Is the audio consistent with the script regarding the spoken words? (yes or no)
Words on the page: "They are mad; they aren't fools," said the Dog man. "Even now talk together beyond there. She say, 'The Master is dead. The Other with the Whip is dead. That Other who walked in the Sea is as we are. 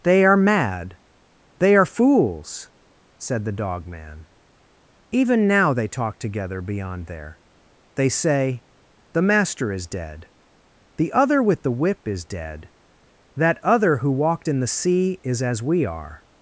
no